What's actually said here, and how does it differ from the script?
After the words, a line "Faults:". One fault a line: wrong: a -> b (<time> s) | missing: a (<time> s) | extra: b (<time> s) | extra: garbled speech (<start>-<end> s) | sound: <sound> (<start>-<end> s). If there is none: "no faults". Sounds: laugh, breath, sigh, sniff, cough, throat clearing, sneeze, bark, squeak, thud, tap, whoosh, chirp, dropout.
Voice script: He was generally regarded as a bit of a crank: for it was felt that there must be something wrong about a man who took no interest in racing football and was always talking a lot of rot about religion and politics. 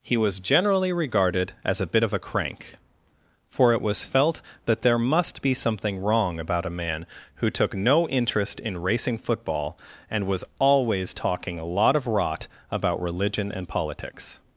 He was generally regarded as a bit of a crank: for it was felt that there must be something wrong about a man who took no interest in racing football and was always talking a lot of rot about religion and politics.
Faults:
no faults